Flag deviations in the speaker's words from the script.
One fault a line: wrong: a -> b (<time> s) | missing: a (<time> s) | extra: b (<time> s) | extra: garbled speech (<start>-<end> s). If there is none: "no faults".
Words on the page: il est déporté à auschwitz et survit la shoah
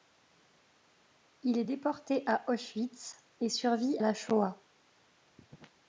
no faults